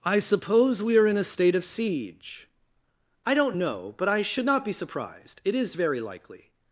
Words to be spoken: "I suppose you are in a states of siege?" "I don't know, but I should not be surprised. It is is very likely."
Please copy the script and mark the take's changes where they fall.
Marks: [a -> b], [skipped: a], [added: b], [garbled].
"I suppose [you -> we] are in a [states -> state] of siege?" "I don't know, but I should not be surprised. It is [skipped: is] very likely."